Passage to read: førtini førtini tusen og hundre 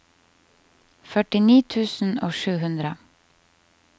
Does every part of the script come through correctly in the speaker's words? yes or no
no